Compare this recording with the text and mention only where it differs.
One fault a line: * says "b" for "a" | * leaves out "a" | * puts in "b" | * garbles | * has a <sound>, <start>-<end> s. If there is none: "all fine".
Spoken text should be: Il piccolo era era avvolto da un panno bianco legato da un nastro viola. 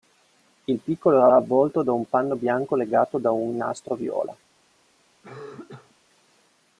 * has a cough, 5.2-6.0 s